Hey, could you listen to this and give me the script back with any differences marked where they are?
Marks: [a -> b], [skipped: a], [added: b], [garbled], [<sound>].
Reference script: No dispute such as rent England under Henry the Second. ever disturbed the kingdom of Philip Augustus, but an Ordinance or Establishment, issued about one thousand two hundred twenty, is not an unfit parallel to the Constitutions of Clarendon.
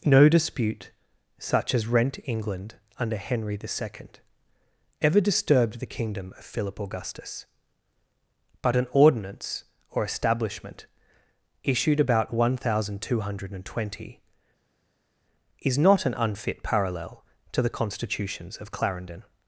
No dispute such as rent England under Henry the Second. ever disturbed the kingdom of Philip Augustus, but an Ordinance or Establishment, issued about one thousand two hundred twenty, is not an unfit parallel to the Constitutions of Clarendon.